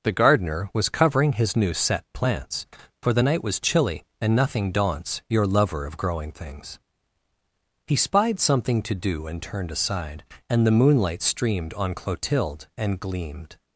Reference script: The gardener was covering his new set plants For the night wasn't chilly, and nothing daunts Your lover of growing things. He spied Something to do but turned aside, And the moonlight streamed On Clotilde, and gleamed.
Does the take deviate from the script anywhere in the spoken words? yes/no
yes